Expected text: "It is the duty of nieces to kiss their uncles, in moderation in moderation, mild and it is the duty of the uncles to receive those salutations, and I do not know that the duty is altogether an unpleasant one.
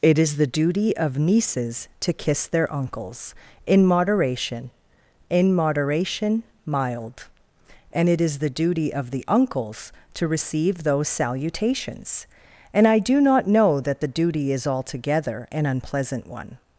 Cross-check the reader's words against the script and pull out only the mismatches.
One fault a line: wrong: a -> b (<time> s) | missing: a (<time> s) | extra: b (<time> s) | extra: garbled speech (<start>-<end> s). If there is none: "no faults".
no faults